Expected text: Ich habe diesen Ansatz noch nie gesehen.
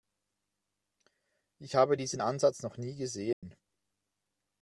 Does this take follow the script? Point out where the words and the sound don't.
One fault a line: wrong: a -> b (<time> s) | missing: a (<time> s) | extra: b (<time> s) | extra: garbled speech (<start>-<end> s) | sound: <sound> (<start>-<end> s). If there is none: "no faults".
sound: dropout (3.3-3.4 s)